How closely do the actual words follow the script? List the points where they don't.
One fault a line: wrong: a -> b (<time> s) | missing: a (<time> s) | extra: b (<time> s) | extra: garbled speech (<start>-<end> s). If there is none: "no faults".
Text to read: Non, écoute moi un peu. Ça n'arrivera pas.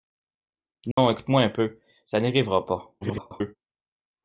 extra: garbled speech (3.0-3.6 s)